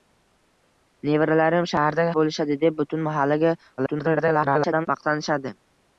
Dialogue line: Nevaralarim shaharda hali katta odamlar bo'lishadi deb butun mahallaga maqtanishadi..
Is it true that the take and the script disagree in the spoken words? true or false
true